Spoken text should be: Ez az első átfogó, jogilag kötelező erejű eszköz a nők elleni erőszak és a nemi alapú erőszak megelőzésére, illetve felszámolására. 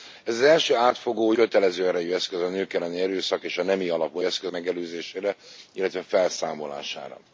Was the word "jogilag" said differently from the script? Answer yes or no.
yes